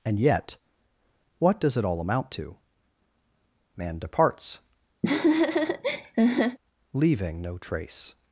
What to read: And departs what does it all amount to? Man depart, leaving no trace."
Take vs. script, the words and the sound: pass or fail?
fail